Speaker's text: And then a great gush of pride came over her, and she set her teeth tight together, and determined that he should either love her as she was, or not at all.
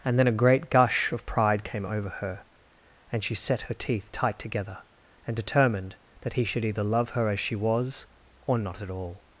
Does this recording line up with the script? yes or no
yes